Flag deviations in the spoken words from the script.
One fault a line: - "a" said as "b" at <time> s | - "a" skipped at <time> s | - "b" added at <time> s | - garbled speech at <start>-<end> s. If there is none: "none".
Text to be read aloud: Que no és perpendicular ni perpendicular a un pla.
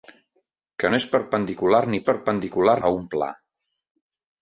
none